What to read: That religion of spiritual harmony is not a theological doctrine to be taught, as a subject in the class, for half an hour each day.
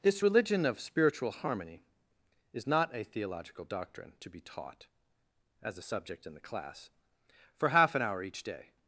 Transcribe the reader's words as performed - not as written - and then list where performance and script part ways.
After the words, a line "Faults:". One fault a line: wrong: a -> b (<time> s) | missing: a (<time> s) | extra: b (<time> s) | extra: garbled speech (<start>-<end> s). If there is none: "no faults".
This religion of spiritual harmony is not a theological doctrine to be taught, as a subject in the class, for half an hour each day.
Faults:
wrong: That -> This (0.0 s)